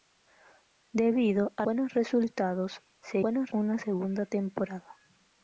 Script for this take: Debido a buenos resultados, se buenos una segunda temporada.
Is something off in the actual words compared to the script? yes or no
no